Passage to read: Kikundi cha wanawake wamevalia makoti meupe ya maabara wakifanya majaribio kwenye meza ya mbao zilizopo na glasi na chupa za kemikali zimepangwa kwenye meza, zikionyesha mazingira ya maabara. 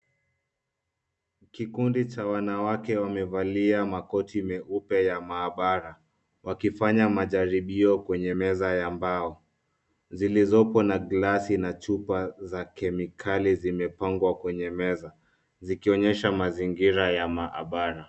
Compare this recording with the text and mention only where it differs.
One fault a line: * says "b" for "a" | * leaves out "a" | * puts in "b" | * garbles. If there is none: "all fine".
all fine